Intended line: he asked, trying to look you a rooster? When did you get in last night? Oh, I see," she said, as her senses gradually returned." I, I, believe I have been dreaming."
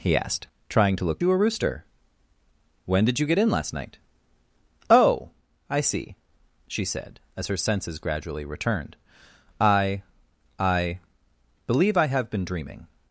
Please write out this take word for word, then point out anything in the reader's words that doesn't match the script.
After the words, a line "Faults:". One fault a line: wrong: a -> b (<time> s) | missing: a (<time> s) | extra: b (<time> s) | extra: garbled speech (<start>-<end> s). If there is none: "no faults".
he asked, trying to look you a rooster? When did you get in last night? Oh, I see," she said, as her senses gradually returned." I, I, believe I have been dreaming."
Faults:
no faults